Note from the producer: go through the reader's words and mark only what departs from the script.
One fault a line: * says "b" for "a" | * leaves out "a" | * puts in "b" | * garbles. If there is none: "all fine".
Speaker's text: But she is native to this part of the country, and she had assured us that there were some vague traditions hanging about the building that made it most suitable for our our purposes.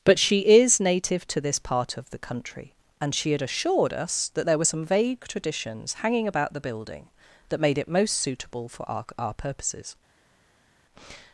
all fine